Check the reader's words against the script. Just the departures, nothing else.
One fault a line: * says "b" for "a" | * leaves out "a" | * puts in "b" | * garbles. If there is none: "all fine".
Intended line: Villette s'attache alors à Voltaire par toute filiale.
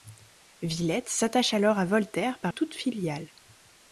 all fine